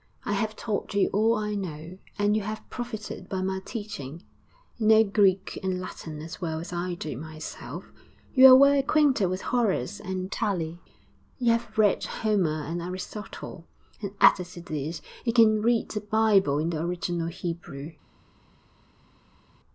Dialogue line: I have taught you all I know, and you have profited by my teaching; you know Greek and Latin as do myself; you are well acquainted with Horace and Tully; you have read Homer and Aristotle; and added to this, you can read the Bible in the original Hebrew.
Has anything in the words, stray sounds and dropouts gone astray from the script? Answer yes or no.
yes